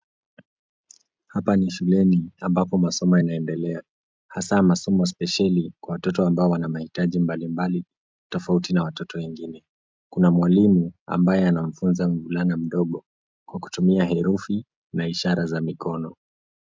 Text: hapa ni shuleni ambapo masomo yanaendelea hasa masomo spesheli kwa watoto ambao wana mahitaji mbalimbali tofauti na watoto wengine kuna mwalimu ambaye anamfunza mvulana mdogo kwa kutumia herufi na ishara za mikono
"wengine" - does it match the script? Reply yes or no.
yes